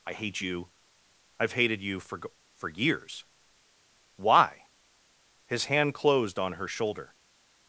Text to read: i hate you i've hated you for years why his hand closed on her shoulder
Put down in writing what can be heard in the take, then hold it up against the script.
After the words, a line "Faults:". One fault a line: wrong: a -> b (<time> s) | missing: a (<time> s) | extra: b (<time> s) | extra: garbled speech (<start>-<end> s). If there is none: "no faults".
i hate you i've hated you for for years why his hand closed on her shoulder
Faults:
extra: for (2.6 s)